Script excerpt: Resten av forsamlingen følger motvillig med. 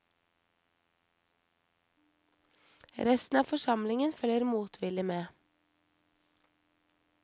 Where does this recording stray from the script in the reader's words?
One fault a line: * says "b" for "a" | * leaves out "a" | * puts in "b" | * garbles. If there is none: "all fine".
all fine